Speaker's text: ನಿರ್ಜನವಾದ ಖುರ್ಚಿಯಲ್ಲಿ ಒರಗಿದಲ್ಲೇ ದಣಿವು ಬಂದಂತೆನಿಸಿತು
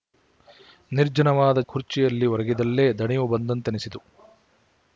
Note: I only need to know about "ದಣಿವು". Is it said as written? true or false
true